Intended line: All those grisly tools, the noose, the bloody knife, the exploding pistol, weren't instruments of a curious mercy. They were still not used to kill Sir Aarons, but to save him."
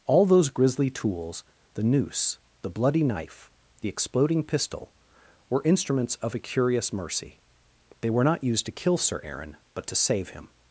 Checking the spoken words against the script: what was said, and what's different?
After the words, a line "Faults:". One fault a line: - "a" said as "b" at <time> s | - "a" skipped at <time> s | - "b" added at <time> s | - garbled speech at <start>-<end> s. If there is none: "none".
All those grisly tools, the noose, the bloody knife, the exploding pistol, were instruments of a curious mercy. They were not used to kill Sir Aaron, but to save him."
Faults:
- "weren't" said as "were" at 5.5 s
- "still" skipped at 8.2 s
- "Aarons" said as "Aaron" at 9.2 s